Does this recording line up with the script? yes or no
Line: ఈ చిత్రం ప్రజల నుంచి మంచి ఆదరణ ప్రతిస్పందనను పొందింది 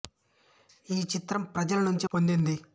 no